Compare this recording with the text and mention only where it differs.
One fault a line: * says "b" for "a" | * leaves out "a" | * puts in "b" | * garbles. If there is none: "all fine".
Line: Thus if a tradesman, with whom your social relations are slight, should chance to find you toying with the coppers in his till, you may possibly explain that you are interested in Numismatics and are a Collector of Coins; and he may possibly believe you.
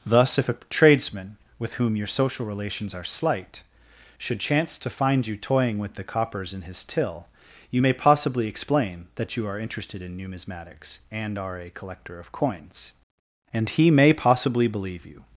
all fine